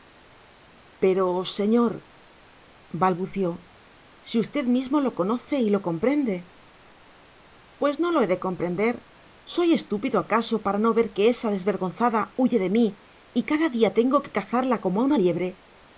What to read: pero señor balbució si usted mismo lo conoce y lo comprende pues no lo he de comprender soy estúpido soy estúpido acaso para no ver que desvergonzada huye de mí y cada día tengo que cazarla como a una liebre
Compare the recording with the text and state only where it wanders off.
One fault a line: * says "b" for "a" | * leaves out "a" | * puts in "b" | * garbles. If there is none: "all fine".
* leaves out "soy estúpido"
* puts in "esa"